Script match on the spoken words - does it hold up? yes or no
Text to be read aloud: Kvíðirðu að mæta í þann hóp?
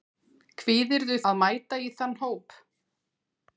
yes